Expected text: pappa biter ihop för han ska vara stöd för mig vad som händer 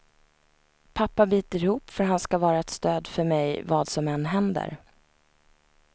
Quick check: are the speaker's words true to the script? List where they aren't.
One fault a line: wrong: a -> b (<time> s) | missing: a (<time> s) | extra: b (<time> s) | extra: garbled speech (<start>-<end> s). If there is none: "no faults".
extra: ett (2.6 s)
extra: än (4.1 s)